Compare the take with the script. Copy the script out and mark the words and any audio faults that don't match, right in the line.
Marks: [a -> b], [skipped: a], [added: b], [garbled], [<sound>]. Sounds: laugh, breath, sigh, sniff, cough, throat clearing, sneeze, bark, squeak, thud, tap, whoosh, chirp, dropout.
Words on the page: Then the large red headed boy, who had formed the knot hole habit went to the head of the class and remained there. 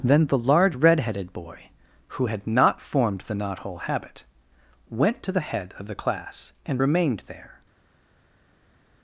Then the large red headed boy, who had [added: not] formed the knot hole habit went to the head of the class and remained there.